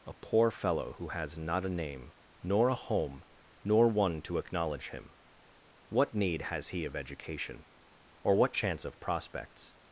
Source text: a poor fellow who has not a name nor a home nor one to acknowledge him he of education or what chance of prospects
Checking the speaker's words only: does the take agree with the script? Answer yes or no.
no